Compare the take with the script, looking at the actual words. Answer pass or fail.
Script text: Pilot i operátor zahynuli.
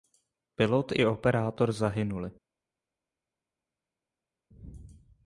pass